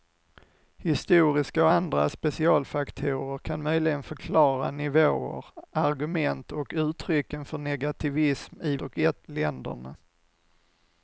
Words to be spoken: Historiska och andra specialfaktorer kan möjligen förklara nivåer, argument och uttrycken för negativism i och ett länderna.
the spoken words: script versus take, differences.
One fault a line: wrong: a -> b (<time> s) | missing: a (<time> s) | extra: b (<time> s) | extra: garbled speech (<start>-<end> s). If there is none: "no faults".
no faults